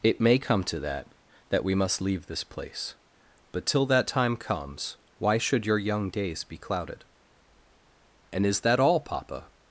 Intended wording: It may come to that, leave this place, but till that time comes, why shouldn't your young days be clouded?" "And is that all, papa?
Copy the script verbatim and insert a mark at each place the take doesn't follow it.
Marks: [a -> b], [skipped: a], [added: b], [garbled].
It may come to that, [added: that we must] leave this place, but till that time comes, why [shouldn't -> should] your young days be clouded?" "And is that all, papa?